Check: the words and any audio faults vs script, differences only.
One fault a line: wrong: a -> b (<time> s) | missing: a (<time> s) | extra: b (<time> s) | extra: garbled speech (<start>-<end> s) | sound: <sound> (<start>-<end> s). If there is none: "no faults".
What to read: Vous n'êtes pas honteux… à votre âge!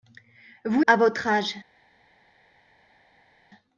missing: n'êtes pas honteux (0.8 s)